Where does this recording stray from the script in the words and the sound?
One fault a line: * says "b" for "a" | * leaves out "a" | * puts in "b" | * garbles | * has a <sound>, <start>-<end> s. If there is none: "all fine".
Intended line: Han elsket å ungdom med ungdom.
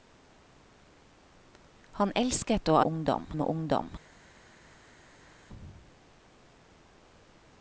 all fine